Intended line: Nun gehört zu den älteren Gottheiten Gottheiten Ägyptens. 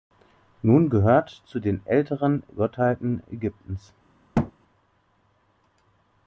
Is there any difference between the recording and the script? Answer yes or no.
yes